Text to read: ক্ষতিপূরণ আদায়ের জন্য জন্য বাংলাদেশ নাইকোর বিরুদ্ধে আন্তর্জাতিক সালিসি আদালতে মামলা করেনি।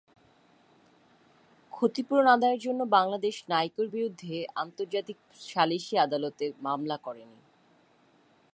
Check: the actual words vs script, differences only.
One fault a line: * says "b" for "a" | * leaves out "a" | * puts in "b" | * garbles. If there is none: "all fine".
* leaves out "জন্য"